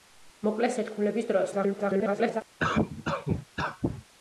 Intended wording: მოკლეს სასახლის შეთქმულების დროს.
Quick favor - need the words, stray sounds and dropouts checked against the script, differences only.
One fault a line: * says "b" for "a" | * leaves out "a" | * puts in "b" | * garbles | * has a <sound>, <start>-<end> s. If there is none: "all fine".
* leaves out "სასახლის"
* garbles
* has a cough, 2.6-4.1 s